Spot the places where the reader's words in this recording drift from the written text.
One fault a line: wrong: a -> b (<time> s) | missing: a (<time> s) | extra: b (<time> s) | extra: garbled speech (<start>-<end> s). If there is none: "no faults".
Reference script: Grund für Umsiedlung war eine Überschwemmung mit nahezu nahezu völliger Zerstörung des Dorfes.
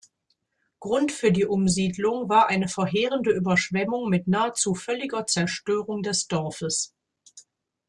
extra: die (1.3 s)
extra: verheerende (2.7 s)
missing: nahezu (4.7 s)